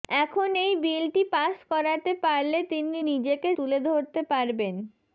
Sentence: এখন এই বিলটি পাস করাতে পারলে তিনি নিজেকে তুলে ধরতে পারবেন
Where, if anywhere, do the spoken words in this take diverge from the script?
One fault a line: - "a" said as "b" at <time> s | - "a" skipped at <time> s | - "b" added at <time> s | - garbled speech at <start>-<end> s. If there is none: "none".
none